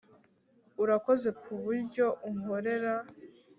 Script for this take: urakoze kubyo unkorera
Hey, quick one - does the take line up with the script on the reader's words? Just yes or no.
yes